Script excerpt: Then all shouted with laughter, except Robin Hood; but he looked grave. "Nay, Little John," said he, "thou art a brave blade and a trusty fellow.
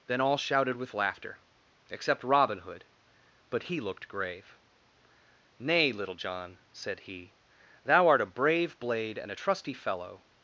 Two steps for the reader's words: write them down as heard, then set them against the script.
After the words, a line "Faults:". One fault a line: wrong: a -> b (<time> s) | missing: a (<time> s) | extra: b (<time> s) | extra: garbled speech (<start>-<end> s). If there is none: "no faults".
Then all shouted with laughter, except Robin Hood; but he looked grave. "Nay, Little John," said he, "thou art a brave blade and a trusty fellow.
Faults:
no faults